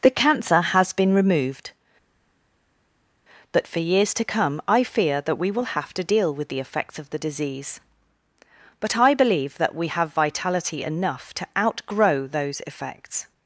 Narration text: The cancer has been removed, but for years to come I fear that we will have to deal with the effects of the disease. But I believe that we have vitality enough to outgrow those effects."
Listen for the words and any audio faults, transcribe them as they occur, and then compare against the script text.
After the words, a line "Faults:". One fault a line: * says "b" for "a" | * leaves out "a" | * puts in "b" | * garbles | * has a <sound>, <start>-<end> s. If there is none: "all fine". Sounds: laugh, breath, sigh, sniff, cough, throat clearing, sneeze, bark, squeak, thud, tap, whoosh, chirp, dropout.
The cancer has been removed, but for years to come I fear that we will have to deal with the effects of the disease. But I believe that we have vitality enough to outgrow those effects."
Faults:
all fine